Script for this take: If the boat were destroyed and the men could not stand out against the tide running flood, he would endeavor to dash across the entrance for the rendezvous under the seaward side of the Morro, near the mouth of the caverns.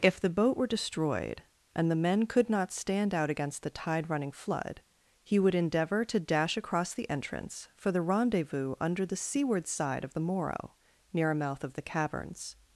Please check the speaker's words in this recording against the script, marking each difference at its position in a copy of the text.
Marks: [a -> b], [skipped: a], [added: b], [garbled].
If the boat were destroyed and the men could not stand out against the tide running flood, he would endeavor to dash across the entrance for the rendezvous under the seaward side of the Morro, near [the -> a] mouth of the caverns.